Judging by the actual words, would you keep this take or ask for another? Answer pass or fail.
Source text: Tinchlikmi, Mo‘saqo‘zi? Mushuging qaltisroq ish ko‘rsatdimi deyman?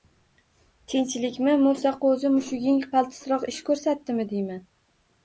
pass